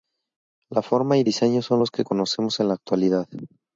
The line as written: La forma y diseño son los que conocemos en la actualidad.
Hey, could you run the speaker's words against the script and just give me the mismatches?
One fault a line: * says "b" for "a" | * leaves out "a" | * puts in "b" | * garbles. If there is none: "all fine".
all fine